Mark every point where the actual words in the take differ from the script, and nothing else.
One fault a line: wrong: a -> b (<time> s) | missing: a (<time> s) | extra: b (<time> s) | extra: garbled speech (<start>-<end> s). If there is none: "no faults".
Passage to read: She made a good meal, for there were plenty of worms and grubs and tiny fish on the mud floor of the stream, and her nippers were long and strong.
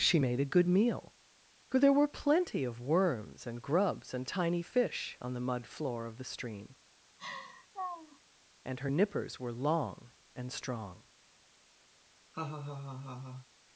no faults